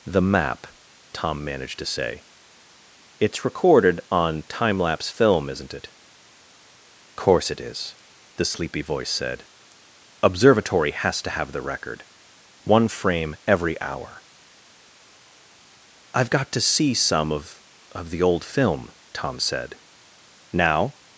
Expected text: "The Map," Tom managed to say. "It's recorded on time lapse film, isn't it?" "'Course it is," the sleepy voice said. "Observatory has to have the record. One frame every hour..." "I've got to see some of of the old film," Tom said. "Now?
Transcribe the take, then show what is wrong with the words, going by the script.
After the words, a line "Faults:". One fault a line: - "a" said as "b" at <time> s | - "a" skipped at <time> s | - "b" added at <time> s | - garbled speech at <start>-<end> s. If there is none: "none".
"The Map," Tom managed to say. "It's recorded on time lapse film, isn't it?" "'Course it is," the sleepy voice said. "Observatory has to have the record. One frame every hour..." "I've got to see some of of the old film," Tom said. "Now?
Faults:
none